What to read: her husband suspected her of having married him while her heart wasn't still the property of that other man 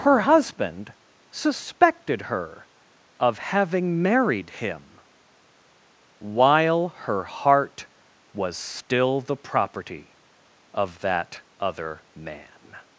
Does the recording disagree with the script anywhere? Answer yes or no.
yes